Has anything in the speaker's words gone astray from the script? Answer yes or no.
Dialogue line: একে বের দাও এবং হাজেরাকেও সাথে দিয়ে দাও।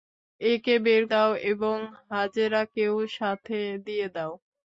no